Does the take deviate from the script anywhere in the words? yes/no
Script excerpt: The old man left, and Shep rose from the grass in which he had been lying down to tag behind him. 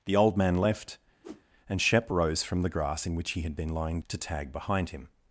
yes